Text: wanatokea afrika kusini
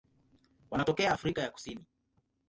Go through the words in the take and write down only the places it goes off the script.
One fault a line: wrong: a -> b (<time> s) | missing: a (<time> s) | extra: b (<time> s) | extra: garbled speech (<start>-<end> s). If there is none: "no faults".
extra: ya (1.4 s)